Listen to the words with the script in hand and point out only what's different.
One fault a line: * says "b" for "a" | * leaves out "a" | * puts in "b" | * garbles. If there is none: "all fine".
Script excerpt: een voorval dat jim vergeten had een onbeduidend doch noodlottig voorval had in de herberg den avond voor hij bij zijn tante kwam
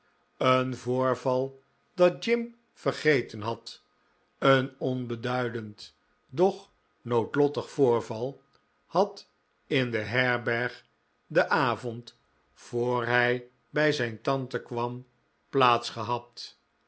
all fine